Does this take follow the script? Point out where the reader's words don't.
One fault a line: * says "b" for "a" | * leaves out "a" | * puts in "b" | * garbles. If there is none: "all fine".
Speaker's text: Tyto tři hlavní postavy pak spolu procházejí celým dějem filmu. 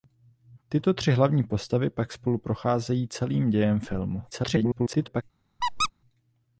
* garbles